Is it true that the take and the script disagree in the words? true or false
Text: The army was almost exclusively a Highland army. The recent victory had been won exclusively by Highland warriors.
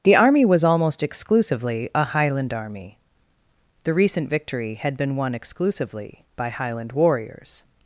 false